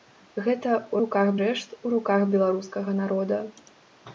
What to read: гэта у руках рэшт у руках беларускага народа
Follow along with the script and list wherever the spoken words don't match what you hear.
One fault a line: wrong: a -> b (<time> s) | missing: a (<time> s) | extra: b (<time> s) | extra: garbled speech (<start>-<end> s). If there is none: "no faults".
no faults